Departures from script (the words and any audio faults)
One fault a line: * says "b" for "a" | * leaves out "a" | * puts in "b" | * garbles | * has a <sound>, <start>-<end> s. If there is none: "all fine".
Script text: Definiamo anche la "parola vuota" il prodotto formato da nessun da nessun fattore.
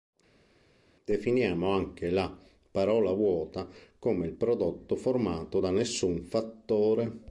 * puts in "come"
* leaves out "da nessun"